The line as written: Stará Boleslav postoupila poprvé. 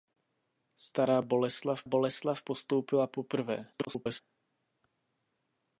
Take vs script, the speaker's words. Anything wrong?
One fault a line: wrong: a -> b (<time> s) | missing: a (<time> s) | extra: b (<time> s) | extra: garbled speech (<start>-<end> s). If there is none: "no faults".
extra: Boleslav (1.8 s)
extra: garbled speech (3.7-4.2 s)